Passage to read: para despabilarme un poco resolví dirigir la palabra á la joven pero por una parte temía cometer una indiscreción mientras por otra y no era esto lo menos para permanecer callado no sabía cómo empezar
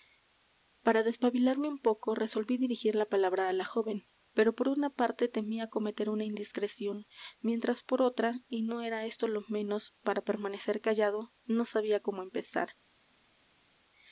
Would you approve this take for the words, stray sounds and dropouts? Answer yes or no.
yes